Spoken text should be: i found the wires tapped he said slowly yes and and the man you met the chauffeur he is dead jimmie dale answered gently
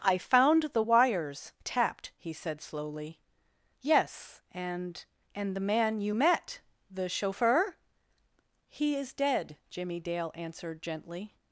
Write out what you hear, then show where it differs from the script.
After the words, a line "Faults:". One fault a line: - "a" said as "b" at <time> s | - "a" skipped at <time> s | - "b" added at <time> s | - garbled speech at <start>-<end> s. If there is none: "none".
i found the wires tapped he said slowly yes and and the man you met the chauffeur he is dead jimmie dale answered gently
Faults:
none